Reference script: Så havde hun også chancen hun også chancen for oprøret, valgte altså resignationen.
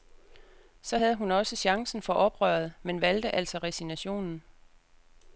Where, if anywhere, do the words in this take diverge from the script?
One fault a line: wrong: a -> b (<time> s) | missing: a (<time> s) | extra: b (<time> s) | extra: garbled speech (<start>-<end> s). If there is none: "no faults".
missing: hun også chancen (2.0 s)
extra: men (2.8 s)